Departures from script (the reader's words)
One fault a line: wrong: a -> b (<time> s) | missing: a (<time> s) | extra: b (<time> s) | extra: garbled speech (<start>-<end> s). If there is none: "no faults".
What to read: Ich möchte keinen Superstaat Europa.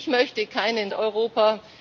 missing: Superstaat (0.9 s)